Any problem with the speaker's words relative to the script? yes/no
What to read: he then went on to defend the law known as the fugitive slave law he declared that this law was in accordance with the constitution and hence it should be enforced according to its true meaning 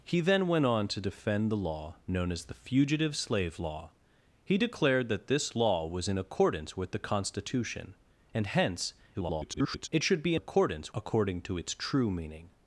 yes